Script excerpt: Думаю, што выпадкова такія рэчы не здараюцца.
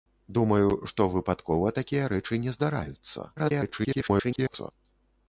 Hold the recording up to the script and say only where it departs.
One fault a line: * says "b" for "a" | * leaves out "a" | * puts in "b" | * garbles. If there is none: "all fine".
* garbles